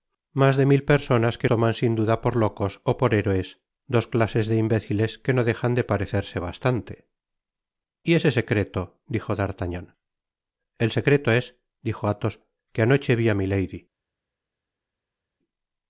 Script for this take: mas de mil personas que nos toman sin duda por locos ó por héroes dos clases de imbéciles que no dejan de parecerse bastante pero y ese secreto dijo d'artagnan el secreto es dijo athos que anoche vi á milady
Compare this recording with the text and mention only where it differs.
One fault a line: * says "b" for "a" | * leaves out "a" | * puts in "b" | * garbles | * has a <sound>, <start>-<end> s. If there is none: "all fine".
* leaves out "nos"
* leaves out "pero"